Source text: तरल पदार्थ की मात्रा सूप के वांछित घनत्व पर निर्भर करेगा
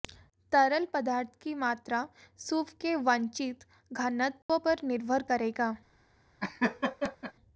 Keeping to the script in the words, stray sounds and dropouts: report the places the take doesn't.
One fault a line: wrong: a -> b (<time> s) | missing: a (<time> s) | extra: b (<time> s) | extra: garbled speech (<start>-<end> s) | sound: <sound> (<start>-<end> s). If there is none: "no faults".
sound: dropout (4.4-4.5 s)
sound: laugh (6.4-7.3 s)